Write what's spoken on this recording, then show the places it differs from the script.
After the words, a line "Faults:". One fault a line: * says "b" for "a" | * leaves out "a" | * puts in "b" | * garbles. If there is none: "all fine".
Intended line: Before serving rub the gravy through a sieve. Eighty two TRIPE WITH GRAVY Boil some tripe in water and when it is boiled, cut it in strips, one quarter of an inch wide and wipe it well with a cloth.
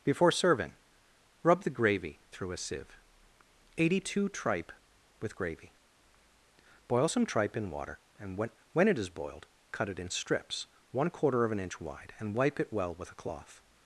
Before serving rub the gravy through a sieve. Eighty two TRIPE WITH GRAVY Boil some tripe in water and when when it is boiled, cut it in strips, one quarter of an inch wide and wipe it well with a cloth.
Faults:
* puts in "when"